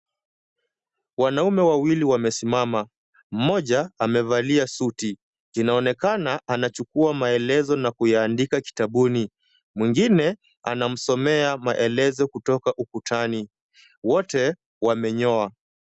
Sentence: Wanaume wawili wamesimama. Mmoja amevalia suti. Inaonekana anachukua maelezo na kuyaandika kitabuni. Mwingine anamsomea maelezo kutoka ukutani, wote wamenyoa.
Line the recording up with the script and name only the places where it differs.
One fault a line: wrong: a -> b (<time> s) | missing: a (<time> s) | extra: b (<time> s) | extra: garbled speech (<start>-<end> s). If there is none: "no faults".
no faults